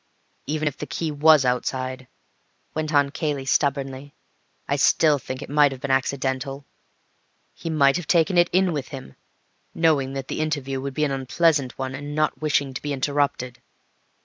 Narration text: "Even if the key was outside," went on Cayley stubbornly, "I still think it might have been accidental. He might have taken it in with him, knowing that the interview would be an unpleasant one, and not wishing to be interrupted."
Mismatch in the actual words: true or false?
false